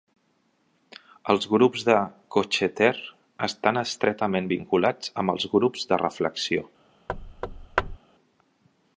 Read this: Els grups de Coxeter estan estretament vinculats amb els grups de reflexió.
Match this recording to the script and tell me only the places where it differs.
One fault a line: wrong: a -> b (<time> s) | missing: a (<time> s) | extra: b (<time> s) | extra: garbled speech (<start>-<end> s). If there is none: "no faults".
no faults